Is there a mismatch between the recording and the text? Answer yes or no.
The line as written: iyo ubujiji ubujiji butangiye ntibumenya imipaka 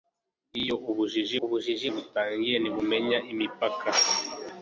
no